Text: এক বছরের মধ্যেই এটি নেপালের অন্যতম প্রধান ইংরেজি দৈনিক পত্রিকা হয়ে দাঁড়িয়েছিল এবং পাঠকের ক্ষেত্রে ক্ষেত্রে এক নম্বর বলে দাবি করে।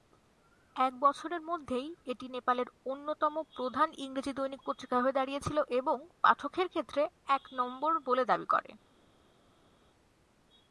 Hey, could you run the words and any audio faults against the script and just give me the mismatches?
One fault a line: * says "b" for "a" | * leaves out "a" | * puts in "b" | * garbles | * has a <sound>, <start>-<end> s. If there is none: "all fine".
* leaves out "ক্ষেত্রে"